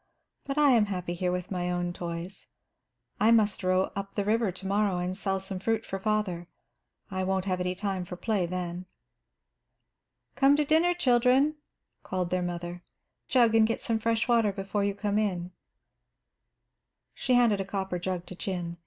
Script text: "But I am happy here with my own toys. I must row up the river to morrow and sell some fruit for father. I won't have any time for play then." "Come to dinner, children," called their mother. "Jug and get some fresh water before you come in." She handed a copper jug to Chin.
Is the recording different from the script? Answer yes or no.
no